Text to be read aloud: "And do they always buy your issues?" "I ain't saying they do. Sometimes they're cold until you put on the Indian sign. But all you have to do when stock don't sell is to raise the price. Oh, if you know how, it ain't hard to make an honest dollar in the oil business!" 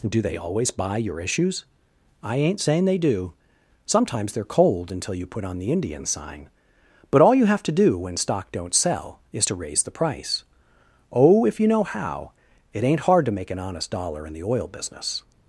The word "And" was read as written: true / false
false